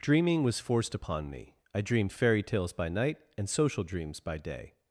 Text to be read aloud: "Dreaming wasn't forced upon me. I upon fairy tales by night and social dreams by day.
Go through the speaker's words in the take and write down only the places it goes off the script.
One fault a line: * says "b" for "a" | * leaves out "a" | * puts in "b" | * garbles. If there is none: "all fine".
* says "was" for "wasn't"
* says "dreamed" for "upon"